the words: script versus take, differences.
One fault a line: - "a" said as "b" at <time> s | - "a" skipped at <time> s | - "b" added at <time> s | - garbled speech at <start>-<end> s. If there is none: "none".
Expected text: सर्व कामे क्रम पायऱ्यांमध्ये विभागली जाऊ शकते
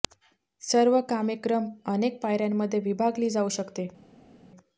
- "अनेक" added at 1.9 s